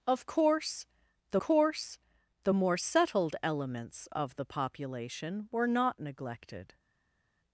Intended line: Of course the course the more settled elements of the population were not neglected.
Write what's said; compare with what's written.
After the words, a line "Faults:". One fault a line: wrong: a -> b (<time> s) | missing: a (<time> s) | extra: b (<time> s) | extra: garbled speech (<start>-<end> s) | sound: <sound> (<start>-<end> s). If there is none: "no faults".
Of course the course the more settled elements of the population were not neglected.
Faults:
no faults